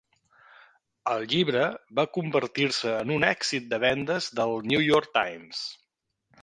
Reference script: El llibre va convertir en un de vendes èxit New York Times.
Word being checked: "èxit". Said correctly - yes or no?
no